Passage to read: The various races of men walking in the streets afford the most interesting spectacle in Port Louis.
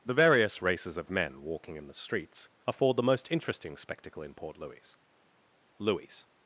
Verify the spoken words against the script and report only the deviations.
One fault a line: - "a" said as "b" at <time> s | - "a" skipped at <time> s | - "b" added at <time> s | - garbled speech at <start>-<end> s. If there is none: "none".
- "Louis" added at 5.8 s